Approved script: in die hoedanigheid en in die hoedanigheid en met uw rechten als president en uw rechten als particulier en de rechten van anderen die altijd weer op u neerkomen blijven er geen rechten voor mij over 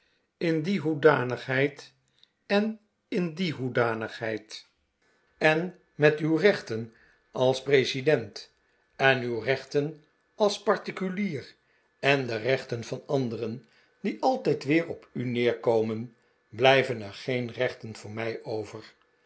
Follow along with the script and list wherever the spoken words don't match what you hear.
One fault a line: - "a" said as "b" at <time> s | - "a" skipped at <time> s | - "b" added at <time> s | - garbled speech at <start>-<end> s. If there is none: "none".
none